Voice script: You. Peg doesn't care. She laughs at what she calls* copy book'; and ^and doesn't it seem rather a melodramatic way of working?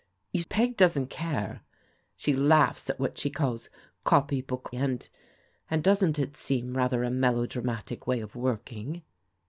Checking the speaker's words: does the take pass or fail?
pass